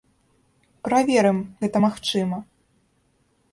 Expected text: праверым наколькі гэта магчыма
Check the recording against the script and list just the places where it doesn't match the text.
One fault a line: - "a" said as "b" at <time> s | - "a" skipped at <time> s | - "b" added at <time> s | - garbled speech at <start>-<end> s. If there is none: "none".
- "наколькі" skipped at 1.4 s